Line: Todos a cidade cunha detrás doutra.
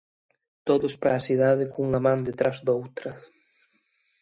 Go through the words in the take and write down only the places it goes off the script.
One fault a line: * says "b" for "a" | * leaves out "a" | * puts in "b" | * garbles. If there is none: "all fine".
* puts in "para"
* puts in "man"